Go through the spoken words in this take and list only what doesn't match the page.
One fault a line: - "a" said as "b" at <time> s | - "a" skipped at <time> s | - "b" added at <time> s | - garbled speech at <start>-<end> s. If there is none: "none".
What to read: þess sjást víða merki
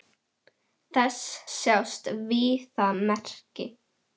none